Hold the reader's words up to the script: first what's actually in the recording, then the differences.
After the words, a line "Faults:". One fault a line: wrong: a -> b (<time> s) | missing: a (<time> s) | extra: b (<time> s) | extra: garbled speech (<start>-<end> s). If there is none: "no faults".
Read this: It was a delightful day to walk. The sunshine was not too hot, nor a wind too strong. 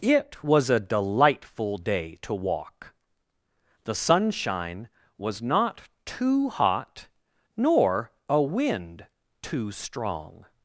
It was a delightful day to walk. The sunshine was not too hot, nor a wind too strong.
Faults:
no faults